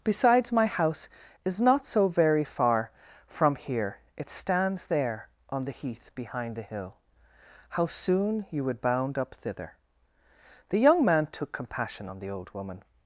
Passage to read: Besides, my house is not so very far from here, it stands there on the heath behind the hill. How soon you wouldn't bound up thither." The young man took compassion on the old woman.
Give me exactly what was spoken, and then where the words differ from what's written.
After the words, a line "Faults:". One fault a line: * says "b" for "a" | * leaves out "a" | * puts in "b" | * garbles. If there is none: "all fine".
Besides, my house is not so very far from here, it stands there on the heath behind the hill. How soon you would bound up thither." The young man took compassion on the old woman.
Faults:
* says "would" for "wouldn't"